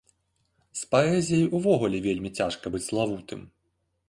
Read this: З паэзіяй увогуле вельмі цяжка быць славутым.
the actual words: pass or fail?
pass